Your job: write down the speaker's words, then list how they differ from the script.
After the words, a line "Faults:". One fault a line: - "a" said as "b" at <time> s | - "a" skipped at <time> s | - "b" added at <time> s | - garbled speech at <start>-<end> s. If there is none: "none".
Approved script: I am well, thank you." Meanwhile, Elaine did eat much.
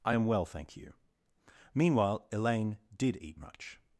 I am well, thank you." Meanwhile, Elaine did eat much.
Faults:
none